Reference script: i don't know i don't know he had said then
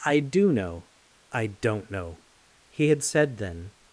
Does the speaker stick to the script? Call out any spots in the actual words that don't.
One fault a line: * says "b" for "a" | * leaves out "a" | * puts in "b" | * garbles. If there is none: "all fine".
* says "do" for "don't"